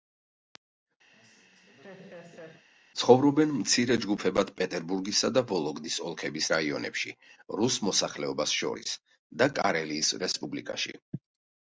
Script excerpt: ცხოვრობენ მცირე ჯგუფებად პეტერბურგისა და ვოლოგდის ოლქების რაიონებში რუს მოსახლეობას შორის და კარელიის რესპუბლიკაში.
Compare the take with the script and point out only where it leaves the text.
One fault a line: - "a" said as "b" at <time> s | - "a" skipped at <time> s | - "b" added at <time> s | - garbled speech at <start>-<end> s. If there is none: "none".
none